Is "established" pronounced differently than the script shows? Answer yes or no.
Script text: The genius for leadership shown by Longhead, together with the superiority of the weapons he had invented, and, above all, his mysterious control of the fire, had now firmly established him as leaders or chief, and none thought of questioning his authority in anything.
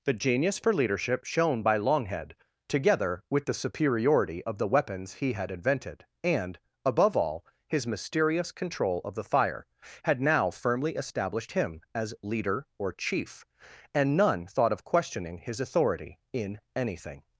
no